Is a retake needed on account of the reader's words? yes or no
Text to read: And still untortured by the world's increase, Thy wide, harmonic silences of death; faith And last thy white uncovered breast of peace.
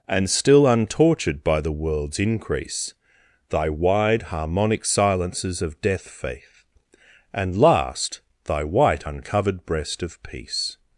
no